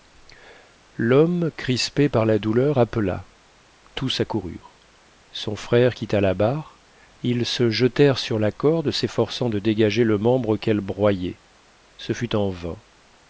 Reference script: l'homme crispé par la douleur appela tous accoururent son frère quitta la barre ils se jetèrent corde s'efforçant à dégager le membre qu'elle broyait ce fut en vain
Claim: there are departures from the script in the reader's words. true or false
true